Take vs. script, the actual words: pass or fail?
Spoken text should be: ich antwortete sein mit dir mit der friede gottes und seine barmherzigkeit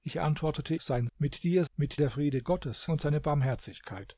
pass